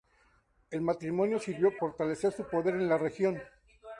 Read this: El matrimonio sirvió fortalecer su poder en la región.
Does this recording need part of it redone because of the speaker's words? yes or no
no